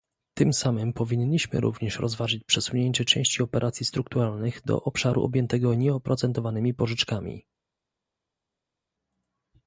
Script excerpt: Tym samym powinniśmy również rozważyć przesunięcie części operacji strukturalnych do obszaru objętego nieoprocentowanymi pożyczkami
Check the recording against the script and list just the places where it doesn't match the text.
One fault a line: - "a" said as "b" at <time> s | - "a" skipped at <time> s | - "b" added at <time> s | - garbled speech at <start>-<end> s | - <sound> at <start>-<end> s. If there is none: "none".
none